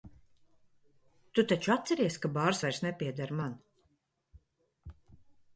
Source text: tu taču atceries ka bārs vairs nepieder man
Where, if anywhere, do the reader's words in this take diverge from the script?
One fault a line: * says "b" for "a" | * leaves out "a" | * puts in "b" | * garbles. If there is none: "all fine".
all fine